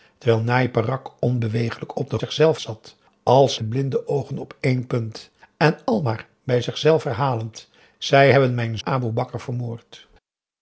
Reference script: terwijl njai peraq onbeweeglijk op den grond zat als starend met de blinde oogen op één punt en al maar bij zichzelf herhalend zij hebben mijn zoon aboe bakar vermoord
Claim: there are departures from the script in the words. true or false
true